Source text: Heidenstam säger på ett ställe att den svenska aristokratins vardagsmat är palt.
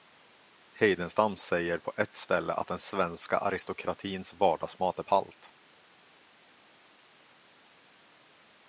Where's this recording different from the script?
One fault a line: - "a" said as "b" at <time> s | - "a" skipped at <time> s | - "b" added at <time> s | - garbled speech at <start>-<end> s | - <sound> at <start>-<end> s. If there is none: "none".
none